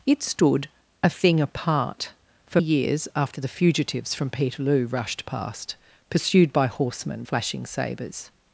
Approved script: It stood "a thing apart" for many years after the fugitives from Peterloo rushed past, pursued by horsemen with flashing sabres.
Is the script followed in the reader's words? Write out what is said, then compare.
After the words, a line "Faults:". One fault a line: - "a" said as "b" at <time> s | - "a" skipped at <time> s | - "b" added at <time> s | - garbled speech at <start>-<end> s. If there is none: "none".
It stood "a thing apart" for years after the fugitives from Peterloo rushed past, pursued by horsemen flashing sabres.
Faults:
- "many" skipped at 2.6 s
- "with" skipped at 7.2 s